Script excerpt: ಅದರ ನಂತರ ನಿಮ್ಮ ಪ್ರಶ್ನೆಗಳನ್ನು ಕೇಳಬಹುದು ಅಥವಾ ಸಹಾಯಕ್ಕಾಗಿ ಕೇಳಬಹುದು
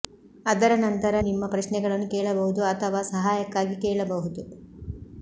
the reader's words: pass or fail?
pass